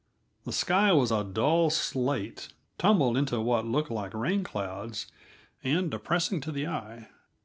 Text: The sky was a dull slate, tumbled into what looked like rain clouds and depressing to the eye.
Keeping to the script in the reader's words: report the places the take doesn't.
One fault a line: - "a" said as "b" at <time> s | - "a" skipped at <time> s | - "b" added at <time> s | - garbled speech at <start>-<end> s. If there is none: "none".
none